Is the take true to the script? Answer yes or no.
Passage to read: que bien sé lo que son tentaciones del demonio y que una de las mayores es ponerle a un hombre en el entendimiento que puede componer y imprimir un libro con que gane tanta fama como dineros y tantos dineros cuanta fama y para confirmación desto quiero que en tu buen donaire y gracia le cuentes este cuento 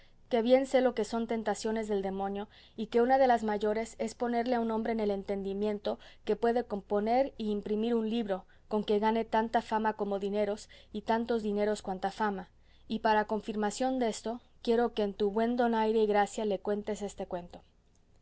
yes